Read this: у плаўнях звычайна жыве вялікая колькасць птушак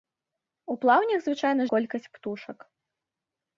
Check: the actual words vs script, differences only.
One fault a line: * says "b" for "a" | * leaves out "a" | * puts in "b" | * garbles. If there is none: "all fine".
* leaves out "жыве вялікая"